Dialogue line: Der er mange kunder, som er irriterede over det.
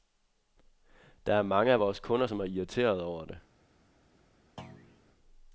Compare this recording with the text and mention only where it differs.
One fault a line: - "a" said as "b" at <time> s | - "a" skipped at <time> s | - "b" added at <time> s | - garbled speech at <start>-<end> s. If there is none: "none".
- "af vores" added at 1.7 s